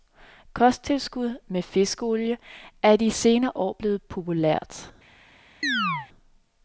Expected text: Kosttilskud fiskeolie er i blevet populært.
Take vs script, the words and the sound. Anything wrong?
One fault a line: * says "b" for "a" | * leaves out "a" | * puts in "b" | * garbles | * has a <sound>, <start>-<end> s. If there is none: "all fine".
* puts in "med"
* puts in "de senere år"
* has a chirp, 5.6-6.1 s